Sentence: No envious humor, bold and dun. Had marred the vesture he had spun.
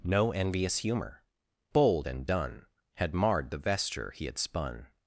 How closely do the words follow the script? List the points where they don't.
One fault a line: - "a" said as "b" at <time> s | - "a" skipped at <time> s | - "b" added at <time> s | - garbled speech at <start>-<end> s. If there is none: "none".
none